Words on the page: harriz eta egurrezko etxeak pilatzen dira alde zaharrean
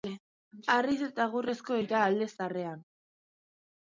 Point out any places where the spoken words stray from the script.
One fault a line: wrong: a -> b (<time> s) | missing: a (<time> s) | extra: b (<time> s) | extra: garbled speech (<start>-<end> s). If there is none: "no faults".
missing: etxeak pilatzen (1.8 s)